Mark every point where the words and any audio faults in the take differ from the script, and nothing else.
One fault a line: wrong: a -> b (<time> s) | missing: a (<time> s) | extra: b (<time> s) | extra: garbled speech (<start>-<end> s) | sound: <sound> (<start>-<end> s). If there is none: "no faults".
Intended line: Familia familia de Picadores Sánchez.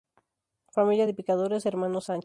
missing: familia (1.1 s)
extra: Hermanos (1.6 s)